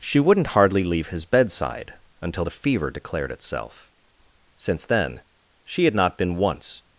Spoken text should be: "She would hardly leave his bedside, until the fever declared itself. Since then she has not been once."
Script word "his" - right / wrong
right